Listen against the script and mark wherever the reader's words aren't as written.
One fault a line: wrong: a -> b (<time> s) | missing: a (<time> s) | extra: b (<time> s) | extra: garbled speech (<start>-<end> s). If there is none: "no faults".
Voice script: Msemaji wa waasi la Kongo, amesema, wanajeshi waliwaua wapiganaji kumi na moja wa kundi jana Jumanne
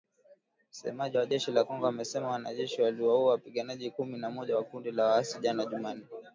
wrong: waasi -> jeshi (1.3 s)
extra: la waasi (4.9 s)